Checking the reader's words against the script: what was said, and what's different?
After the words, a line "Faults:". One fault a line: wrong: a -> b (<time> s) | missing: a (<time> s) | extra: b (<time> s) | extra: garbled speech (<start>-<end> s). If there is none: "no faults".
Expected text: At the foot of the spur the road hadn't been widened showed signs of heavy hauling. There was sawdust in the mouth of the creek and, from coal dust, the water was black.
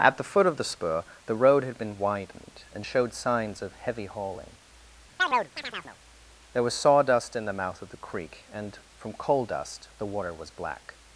At the foot of the spur the road had been widened and showed signs of heavy hauling. There was sawdust in the mouth of the creek and, from coal dust, the water was black.
Faults:
wrong: hadn't -> had (1.6 s)
extra: and (2.7 s)